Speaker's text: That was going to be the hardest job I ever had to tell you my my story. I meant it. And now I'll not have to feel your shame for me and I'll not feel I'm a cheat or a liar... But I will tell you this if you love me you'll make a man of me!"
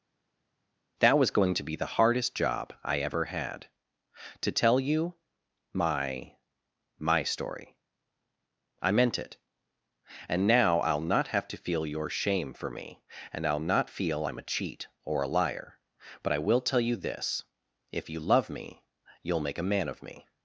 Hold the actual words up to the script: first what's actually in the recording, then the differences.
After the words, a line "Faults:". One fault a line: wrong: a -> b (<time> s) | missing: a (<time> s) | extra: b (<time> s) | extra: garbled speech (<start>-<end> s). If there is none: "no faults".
That was going to be the hardest job I ever had to tell you my my story. I meant it. And now I'll not have to feel your shame for me and I'll not feel I'm a cheat or a liar... But I will tell you this if you love me you'll make a man of me!"
Faults:
no faults